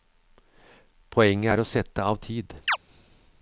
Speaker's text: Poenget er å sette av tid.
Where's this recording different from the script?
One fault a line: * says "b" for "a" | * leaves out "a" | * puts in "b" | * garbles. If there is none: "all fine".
all fine